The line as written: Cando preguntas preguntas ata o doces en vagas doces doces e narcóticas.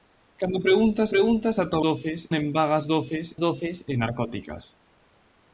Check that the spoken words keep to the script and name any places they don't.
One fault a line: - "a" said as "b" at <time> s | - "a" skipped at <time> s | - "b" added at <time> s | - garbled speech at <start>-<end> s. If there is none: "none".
none